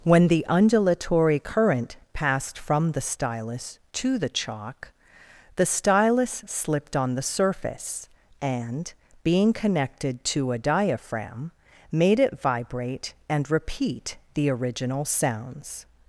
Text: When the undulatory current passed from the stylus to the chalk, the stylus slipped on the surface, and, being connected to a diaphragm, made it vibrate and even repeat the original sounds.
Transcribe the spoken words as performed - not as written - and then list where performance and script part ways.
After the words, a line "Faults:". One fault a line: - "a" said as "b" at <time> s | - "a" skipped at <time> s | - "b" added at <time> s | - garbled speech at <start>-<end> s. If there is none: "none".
When the undulatory current passed from the stylus to the chalk, the stylus slipped on the surface, and, being connected to a diaphragm, made it vibrate and repeat the original sounds.
Faults:
- "even" skipped at 13.5 s